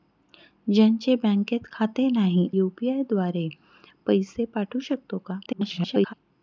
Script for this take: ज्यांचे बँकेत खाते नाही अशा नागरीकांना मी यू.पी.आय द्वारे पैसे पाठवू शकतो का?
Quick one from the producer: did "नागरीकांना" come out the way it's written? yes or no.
no